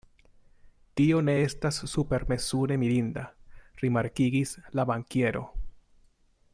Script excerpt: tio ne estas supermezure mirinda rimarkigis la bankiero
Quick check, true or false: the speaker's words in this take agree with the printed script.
true